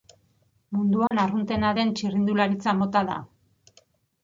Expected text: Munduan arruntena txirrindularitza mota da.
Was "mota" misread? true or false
false